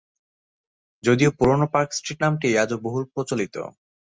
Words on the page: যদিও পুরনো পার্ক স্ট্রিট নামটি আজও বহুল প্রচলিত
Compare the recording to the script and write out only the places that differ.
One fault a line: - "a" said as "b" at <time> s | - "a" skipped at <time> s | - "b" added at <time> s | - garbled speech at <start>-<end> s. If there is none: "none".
none